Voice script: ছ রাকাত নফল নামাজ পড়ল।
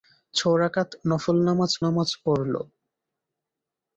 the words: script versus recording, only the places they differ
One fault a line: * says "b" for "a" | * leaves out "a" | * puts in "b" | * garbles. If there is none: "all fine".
* puts in "নামাজ"